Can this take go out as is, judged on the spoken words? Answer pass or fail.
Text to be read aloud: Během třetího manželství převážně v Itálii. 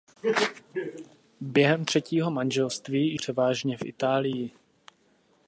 pass